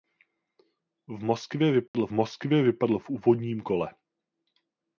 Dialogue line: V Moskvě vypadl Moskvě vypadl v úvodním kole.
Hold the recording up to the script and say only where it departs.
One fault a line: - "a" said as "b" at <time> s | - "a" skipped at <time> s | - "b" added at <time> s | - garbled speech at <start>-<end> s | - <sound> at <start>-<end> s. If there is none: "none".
- dropout at 1.9-1.9 s